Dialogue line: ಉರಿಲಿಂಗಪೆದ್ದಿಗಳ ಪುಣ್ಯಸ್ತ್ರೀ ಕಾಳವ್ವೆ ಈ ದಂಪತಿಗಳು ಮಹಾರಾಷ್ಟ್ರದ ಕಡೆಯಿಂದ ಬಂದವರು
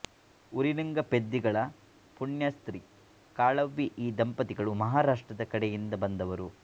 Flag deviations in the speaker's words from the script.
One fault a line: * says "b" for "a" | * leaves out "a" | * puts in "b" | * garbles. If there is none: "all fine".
all fine